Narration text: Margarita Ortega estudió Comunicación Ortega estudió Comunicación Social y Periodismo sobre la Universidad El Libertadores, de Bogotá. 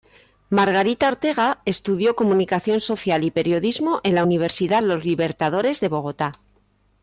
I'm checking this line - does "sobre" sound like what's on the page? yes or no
no